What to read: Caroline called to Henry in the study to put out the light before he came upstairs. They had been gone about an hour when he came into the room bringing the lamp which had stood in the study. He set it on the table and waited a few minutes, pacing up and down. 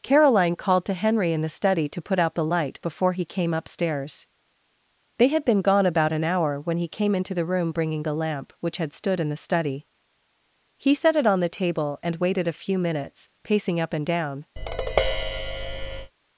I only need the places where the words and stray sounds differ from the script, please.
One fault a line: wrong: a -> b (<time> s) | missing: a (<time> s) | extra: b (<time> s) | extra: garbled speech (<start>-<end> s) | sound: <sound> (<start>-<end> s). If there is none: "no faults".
sound: tap (14.6-16.1 s)